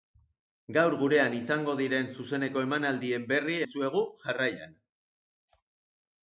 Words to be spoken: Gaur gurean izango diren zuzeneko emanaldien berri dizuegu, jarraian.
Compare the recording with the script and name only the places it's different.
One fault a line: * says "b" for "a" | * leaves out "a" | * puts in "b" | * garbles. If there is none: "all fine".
all fine